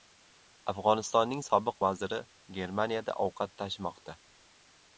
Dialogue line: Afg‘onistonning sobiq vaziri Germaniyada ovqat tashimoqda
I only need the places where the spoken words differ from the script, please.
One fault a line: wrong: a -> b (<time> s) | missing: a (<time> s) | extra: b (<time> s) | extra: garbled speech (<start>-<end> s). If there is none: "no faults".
no faults